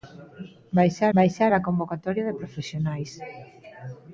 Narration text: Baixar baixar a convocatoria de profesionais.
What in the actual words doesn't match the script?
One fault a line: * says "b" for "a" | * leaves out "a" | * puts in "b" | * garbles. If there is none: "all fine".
all fine